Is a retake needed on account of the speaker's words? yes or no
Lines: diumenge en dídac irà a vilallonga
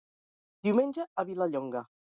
yes